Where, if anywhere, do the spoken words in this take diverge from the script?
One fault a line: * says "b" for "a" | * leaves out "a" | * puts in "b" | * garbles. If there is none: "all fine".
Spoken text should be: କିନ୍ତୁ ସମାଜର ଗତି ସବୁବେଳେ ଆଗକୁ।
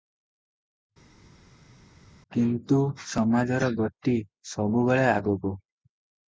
all fine